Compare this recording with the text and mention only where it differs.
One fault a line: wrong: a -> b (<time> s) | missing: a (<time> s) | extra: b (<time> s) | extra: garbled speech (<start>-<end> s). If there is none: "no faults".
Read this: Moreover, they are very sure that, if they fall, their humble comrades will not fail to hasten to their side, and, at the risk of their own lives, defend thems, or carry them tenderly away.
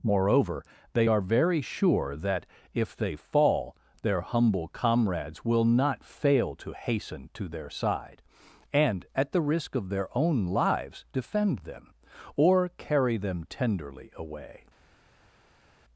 wrong: thems -> them (11.6 s)